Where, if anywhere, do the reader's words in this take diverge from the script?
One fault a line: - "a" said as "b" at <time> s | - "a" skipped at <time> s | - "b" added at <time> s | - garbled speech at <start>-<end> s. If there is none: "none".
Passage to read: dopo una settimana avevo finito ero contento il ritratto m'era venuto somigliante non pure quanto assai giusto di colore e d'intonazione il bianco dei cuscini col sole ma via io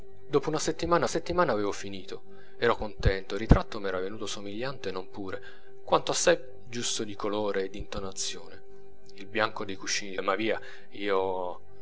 - "settimana" added at 1.1 s
- "col sole" skipped at 10.2 s